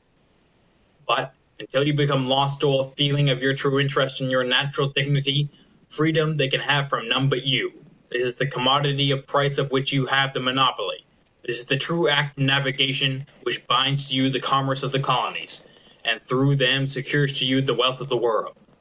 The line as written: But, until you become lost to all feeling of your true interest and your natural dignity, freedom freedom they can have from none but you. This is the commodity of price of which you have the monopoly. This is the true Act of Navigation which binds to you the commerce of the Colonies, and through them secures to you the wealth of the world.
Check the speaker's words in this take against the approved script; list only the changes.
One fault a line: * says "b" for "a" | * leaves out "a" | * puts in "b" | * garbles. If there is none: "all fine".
* leaves out "freedom"